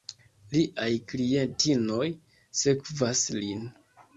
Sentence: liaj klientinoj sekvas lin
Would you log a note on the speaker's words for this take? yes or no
no